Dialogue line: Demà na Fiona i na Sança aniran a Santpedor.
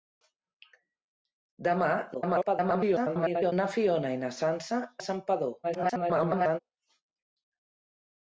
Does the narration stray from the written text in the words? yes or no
yes